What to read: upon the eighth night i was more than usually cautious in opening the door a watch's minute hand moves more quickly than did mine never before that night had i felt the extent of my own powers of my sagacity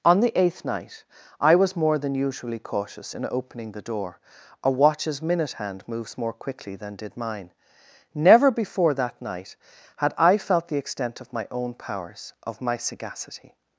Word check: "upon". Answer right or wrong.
wrong